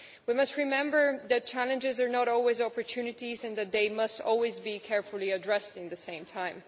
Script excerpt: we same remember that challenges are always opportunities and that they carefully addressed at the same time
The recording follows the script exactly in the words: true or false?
false